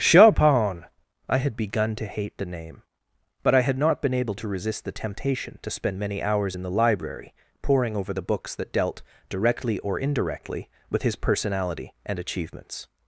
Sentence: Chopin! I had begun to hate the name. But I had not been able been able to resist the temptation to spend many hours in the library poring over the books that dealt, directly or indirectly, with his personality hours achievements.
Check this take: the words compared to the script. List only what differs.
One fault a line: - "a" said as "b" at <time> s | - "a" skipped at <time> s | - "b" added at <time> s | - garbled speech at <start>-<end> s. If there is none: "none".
- "been able" skipped at 4.3 s
- "hours" said as "and" at 12.0 s